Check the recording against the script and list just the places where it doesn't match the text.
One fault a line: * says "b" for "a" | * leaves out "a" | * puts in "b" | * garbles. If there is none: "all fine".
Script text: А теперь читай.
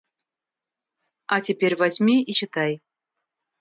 * puts in "возьми и"